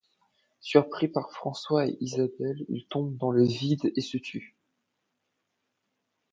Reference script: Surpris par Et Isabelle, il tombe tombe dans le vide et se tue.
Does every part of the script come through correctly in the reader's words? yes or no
no